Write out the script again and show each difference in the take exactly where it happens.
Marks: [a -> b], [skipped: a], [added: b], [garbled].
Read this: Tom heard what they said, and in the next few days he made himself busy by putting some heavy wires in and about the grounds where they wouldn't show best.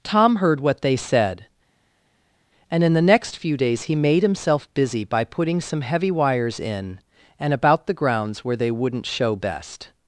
Tom heard what they said, and in the next few days he made himself busy by putting some heavy wires in and about the grounds where they wouldn't show best.